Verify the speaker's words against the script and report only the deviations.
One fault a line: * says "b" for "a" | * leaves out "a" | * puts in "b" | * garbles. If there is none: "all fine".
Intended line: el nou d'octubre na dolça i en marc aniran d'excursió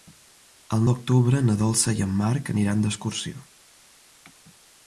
* leaves out "nou"